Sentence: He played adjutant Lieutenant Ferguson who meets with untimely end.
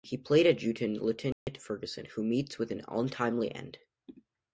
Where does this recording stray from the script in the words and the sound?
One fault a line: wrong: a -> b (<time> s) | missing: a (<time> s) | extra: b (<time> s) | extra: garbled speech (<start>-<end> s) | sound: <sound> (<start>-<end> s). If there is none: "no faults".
sound: dropout (1.3-1.5 s)
extra: an (2.7 s)